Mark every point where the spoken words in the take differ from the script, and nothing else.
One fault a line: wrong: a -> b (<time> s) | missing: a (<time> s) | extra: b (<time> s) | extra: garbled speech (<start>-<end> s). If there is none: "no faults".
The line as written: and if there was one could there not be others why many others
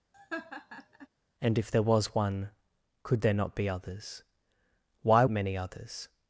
no faults